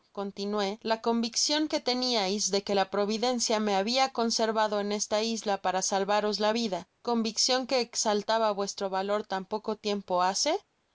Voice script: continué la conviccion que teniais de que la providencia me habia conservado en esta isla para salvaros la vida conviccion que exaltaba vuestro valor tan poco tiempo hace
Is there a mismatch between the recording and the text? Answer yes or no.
no